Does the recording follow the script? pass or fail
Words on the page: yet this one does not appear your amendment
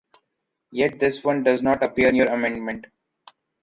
pass